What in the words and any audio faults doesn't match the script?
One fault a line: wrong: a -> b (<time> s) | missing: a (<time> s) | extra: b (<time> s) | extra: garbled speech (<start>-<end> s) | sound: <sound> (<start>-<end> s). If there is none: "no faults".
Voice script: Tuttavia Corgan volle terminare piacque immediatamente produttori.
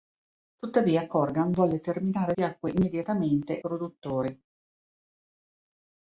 no faults